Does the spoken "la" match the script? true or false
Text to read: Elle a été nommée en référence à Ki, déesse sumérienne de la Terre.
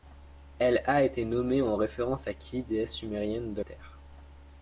false